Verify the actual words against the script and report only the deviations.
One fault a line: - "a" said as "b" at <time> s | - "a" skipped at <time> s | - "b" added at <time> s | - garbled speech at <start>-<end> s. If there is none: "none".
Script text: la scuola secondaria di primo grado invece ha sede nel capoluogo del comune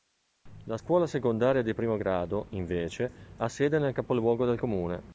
none